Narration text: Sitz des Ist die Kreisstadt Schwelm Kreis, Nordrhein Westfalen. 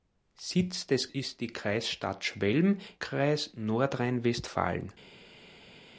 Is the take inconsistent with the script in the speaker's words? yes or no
no